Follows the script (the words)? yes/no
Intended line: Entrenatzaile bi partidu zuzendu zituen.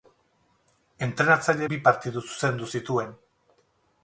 yes